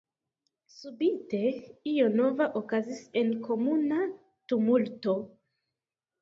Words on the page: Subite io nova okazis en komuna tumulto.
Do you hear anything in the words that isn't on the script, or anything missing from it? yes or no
no